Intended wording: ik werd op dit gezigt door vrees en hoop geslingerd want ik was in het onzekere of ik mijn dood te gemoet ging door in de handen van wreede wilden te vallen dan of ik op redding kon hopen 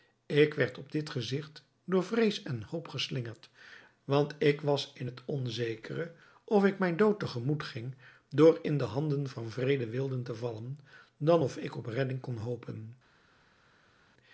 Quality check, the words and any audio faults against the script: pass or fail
pass